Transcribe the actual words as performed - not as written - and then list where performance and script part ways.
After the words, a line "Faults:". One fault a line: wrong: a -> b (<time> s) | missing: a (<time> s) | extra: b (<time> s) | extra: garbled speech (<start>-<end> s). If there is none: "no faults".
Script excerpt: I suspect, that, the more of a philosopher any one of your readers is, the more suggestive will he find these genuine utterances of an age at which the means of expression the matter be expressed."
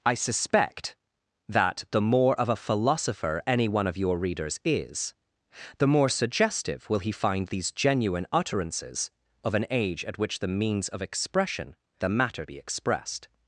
I suspect, that, the more of a philosopher any one of your readers is, the more suggestive will he find these genuine utterances of an age at which the means of expression the matter be expressed."
Faults:
no faults